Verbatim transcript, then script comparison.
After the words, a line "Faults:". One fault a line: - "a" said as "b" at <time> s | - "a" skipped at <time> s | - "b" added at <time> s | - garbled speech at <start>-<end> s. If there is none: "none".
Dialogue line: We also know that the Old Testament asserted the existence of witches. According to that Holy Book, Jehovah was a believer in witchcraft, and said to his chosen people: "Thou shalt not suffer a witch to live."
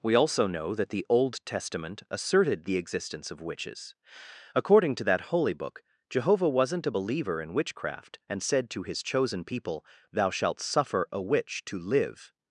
We also know that the Old Testament asserted the existence of witches. According to that Holy Book, Jehovah wasn't a believer in witchcraft, and said to his chosen people: "Thou shalt suffer a witch to live."
Faults:
- "was" said as "wasn't" at 6.5 s
- "not" skipped at 10.6 s